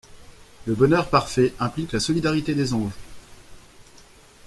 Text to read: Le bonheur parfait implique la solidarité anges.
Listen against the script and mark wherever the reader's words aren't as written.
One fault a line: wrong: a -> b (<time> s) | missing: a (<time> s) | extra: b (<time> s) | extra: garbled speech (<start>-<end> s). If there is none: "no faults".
extra: des (2.5 s)